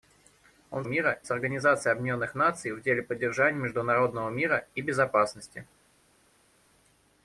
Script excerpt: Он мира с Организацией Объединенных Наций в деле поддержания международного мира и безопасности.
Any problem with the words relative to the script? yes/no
no